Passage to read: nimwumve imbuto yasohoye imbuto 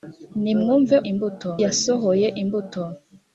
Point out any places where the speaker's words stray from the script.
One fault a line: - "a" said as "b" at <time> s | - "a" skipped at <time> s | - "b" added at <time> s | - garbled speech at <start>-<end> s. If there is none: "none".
none